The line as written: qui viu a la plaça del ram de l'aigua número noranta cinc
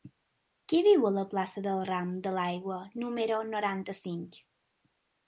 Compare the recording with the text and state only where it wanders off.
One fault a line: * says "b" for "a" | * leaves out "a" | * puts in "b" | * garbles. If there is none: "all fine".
all fine